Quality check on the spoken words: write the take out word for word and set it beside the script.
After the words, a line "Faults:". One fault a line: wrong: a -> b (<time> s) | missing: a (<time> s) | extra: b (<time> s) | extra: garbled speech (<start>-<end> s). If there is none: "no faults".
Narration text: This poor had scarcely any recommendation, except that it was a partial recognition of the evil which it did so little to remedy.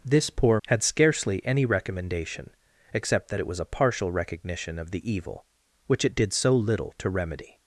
This poor had scarcely any recommendation, except that it was a partial recognition of the evil which it did so little to remedy.
Faults:
no faults